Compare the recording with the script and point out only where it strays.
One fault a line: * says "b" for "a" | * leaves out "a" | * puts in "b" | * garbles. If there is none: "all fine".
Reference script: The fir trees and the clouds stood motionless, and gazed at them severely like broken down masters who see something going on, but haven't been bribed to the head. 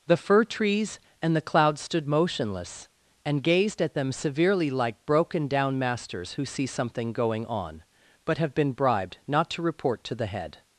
* says "have" for "haven't"
* puts in "not to report"